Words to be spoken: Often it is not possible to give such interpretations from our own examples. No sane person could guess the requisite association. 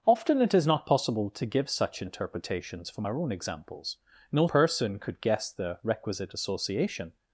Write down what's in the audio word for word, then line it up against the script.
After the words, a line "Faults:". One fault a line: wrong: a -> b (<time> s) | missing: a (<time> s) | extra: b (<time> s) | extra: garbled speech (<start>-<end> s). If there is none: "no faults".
Often it is not possible to give such interpretations from our own examples. No person could guess the requisite association.
Faults:
missing: sane (4.5 s)